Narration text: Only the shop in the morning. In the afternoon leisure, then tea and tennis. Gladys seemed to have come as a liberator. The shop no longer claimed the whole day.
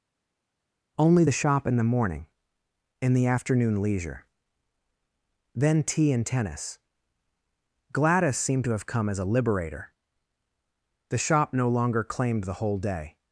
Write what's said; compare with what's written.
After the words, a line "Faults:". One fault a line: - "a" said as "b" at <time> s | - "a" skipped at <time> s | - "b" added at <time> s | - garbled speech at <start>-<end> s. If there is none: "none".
Only the shop in the morning. In the afternoon leisure, then tea and tennis. Gladys seemed to have come as a liberator. The shop no longer claimed the whole day.
Faults:
none